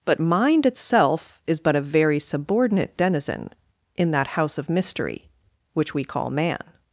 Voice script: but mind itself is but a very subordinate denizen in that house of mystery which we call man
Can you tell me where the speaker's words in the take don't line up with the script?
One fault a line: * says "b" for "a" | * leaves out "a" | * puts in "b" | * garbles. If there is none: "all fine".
all fine